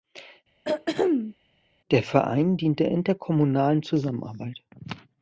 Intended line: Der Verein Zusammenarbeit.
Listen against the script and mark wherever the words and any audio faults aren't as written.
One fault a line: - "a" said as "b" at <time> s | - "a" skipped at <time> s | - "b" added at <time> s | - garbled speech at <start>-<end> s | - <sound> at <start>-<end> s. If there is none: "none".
- throat clearing at 0.6-1.4 s
- "dient der interkommunalen" added at 2.5 s